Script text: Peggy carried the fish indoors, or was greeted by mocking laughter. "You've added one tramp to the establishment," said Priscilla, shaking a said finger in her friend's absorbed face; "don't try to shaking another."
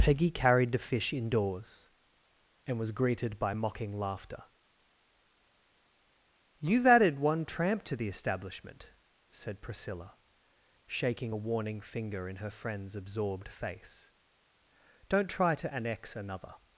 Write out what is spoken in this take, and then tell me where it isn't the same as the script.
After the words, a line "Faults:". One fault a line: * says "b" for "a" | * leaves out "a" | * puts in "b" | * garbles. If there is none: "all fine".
Peggy carried the fish indoors, and was greeted by mocking laughter. "You've added one tramp to the establishment," said Priscilla, shaking a warning finger in her friend's absorbed face; "don't try to annex another."
Faults:
* says "and" for "or"
* says "warning" for "said"
* says "annex" for "shaking"